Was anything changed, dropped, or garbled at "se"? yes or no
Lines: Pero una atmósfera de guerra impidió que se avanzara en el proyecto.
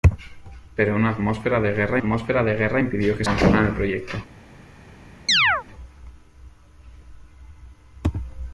yes